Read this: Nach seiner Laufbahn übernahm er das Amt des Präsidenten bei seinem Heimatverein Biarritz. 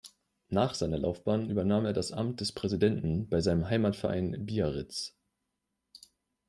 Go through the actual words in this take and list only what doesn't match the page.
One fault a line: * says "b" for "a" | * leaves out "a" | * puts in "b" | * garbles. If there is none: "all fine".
all fine